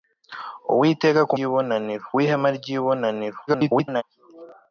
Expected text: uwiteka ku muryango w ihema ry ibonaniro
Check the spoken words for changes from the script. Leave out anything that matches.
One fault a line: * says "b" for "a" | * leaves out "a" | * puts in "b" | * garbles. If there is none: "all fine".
* says "ibonaniro" for "muryango"
* garbles